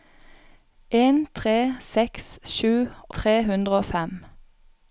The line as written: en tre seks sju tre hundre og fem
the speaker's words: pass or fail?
pass